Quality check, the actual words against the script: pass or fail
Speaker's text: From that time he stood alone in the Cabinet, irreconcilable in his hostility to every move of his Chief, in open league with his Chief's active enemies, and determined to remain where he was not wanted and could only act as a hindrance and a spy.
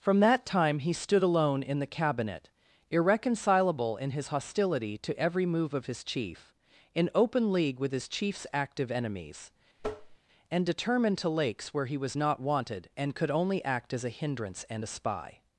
fail